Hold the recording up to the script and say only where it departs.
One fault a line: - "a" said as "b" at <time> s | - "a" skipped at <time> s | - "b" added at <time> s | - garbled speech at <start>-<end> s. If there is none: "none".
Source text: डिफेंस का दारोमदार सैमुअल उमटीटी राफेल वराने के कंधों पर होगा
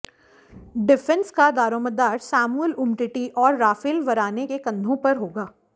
- "और" added at 3.4 s